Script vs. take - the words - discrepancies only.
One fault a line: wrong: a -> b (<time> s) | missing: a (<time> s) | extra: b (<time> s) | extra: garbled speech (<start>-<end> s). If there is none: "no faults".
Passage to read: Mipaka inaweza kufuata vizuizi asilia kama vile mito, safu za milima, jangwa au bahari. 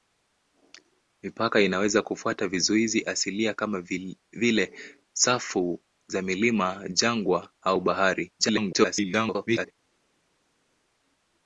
missing: mito (4.7 s)
extra: garbled speech (8.4-9.7 s)